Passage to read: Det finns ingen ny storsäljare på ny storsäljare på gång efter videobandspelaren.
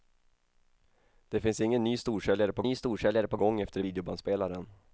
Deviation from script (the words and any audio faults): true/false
false